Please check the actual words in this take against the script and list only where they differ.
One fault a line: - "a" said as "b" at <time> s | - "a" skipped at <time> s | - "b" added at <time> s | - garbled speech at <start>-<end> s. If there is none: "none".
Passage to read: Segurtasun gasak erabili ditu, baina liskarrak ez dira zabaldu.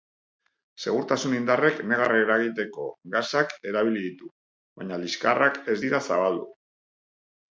- "indarrek negar eragiteko" added at 1.4 s